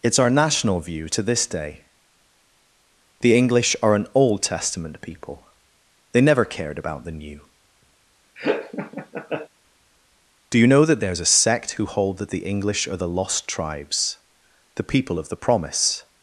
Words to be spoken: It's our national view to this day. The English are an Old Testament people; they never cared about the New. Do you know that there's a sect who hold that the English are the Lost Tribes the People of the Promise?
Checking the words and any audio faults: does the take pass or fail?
fail